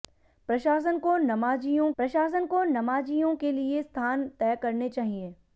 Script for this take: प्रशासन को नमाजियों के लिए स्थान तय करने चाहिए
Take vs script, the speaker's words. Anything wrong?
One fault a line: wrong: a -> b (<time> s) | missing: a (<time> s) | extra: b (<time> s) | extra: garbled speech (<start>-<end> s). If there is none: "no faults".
extra: प्रशासन को नमाजियों (2.0 s)